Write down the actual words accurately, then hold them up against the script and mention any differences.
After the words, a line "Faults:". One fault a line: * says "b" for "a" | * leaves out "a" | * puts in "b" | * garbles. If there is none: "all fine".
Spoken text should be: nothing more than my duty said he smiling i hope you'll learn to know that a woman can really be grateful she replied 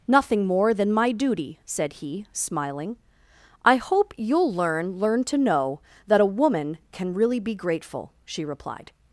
nothing more than my duty said he smiling i hope you'll learn learn to know that a woman can really be grateful she replied
Faults:
* puts in "learn"